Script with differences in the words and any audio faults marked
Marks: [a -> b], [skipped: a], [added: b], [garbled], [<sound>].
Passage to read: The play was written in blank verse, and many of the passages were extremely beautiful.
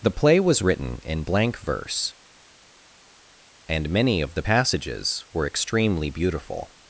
The play was written in blank verse, and many of the passages were extremely beautiful.